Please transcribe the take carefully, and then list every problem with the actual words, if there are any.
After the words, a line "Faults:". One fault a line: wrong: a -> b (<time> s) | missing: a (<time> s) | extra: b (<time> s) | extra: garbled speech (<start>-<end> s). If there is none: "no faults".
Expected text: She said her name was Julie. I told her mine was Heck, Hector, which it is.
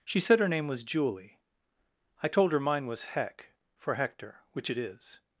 She said her name was Julie. I told her mine was Heck, for Hector, which it is.
Faults:
extra: for (3.8 s)